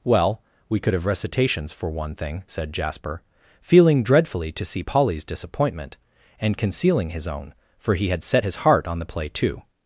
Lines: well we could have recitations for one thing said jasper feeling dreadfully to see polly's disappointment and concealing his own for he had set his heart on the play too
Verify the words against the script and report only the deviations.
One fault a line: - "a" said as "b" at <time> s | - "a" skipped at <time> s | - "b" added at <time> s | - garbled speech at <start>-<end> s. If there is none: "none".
none